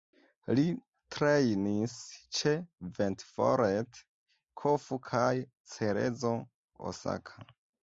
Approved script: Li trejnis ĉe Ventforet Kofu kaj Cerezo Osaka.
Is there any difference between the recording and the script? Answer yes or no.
no